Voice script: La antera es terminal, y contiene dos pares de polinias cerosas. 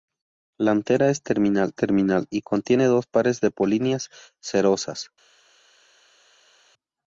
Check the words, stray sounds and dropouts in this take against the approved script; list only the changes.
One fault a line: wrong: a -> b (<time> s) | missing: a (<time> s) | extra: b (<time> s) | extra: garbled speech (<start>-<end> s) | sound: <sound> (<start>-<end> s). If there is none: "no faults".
extra: terminal (1.7 s)